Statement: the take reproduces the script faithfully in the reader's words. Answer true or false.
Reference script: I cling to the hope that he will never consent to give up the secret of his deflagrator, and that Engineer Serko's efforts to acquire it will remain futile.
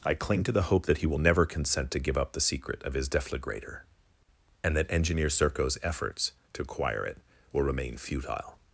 true